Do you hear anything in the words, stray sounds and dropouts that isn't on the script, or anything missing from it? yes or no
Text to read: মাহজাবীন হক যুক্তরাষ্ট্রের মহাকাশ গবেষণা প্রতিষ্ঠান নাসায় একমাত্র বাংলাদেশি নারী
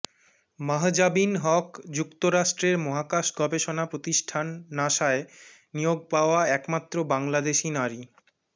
yes